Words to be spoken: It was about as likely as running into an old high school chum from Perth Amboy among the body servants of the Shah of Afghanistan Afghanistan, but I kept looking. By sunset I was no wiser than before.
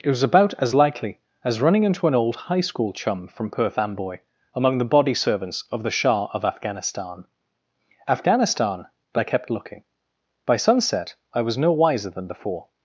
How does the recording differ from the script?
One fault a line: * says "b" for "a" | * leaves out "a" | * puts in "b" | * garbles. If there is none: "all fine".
all fine